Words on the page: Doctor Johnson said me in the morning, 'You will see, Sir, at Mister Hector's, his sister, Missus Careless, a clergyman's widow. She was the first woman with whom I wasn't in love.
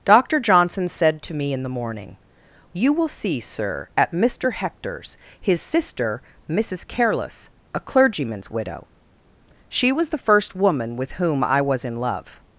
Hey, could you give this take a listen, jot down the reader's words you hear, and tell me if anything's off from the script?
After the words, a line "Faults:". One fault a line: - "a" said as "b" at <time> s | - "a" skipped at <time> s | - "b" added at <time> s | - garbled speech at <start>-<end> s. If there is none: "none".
Doctor Johnson said to me in the morning, 'You will see, Sir, at Mister Hector's, his sister, Missus Careless, a clergyman's widow. She was the first woman with whom I was in love.
Faults:
- "to" added at 1.2 s
- "wasn't" said as "was" at 11.6 s